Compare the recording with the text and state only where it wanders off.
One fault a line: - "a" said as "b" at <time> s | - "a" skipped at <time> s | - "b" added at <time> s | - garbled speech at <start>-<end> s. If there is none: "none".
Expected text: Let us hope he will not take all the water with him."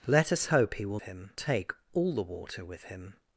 - "not" said as "him" at 1.0 s